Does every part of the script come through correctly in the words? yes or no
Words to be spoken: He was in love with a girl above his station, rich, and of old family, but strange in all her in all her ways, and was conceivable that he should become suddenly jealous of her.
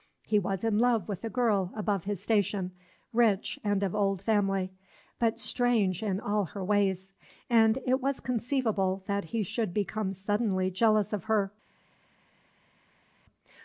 no